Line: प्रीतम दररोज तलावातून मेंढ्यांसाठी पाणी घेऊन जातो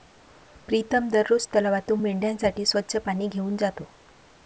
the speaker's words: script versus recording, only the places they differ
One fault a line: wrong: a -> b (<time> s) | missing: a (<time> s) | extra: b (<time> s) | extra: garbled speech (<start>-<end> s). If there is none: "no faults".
extra: स्वच्छ (2.7 s)